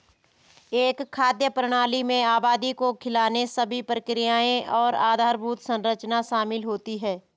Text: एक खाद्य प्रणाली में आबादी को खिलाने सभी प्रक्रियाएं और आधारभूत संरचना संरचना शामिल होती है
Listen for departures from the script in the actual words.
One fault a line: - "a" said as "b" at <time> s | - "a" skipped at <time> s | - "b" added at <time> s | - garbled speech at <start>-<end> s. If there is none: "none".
- "संरचना" skipped at 6.2 s